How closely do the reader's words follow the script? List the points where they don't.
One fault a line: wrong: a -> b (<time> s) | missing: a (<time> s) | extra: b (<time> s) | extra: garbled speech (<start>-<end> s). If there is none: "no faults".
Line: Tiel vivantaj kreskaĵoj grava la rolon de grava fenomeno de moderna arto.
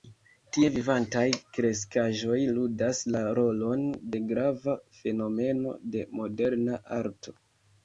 wrong: Tiel -> Tie (0.6 s)
wrong: grava -> ludas (2.5 s)